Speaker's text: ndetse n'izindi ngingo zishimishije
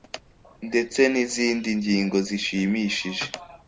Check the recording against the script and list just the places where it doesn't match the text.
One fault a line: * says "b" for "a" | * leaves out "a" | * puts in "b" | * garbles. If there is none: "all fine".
all fine